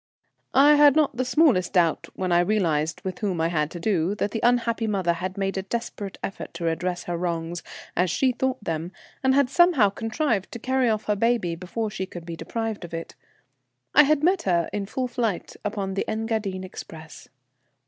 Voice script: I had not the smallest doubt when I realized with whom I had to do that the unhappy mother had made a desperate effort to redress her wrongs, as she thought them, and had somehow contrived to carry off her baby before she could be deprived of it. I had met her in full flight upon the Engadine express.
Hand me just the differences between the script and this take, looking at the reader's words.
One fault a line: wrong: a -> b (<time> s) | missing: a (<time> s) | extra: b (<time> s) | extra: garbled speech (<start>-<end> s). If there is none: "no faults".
no faults